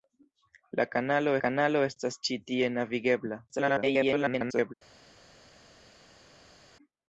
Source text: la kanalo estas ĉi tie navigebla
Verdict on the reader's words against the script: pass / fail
fail